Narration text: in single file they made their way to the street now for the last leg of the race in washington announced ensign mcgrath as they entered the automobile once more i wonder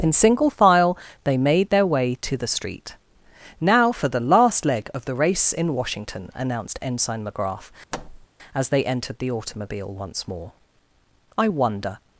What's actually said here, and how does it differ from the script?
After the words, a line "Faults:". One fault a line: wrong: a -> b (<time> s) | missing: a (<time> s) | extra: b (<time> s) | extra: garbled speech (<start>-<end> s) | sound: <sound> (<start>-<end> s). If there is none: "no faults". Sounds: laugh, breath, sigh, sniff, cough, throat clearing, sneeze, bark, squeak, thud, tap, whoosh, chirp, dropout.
in single file they made their way to the street now for the last leg of the race in washington announced ensign mcgrath as they entered the automobile once more i wonder
Faults:
sound: thud (7.9-8.3 s)